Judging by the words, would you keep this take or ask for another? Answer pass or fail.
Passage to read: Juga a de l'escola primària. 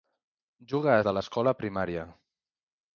pass